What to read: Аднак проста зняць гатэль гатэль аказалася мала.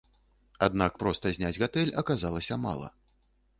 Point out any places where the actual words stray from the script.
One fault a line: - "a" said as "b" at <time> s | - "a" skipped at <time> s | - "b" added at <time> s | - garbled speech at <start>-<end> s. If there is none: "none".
- "гатэль" skipped at 1.9 s